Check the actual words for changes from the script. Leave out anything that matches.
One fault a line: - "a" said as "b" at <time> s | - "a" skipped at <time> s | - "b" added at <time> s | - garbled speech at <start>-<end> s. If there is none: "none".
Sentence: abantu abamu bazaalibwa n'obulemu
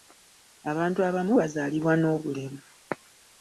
none